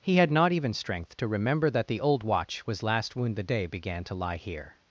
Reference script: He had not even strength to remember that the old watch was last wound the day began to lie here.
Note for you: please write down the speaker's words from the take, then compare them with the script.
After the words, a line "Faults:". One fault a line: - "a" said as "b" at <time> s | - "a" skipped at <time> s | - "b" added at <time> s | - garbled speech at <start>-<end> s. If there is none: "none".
He had not even strength to remember that the old watch was last wound the day began to lie here.
Faults:
none